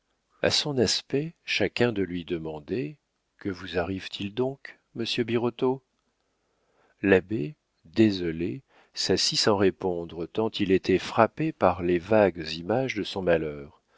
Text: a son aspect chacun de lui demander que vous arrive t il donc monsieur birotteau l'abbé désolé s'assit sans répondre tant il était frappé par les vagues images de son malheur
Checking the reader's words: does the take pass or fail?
pass